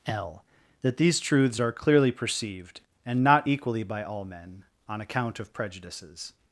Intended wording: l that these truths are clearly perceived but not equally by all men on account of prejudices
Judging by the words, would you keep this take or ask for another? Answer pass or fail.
fail